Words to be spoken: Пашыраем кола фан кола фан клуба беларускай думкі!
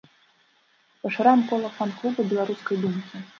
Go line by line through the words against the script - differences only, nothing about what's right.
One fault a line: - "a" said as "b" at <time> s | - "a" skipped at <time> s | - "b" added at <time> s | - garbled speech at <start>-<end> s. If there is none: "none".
- "кола фан" skipped at 1.9 s